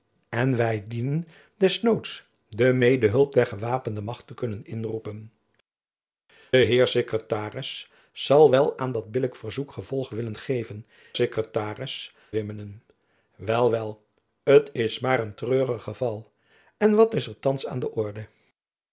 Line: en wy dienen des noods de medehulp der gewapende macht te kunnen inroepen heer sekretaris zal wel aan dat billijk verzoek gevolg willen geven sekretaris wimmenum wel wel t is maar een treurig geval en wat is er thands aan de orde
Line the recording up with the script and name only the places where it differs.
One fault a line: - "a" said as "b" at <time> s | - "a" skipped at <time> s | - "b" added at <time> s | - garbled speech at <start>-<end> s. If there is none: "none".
none